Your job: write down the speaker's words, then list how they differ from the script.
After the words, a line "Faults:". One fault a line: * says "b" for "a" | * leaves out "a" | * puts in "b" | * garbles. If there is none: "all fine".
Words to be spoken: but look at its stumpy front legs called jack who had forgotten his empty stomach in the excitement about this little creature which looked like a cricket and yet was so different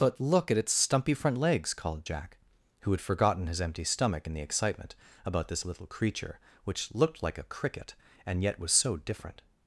but look at its stumpy front legs called jack who had forgotten his empty stomach in the excitement about this little creature which looked like a cricket and yet was so different
Faults:
all fine